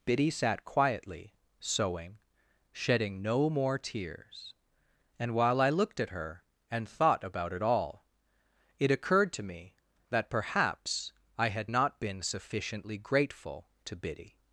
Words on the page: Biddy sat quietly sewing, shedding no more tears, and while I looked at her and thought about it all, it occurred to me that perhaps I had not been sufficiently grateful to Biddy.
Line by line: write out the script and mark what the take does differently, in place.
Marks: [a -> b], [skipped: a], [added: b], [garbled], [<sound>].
Biddy sat quietly sewing, shedding no more tears, and while I looked at her and thought about it all, it occurred to me that perhaps I had not been sufficiently grateful to Biddy.